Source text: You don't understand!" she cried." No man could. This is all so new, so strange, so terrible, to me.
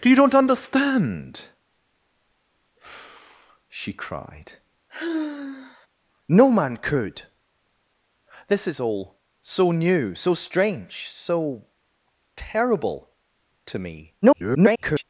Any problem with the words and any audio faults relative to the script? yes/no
yes